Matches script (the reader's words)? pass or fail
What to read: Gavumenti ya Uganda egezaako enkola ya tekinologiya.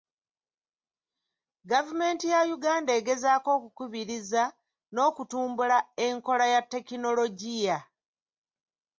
fail